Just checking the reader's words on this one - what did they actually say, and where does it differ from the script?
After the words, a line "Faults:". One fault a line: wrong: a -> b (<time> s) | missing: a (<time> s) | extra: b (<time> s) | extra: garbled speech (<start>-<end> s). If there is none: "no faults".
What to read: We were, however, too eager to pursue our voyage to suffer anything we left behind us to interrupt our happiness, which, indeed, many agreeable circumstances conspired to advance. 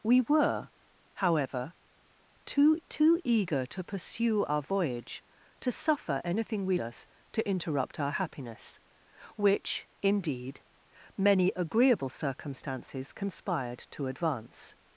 We were, however, too too eager to pursue our voyage to suffer anything we us to interrupt our happiness, which, indeed, many agreeable circumstances conspired to advance.
Faults:
extra: too (2.9 s)
missing: left behind (6.8 s)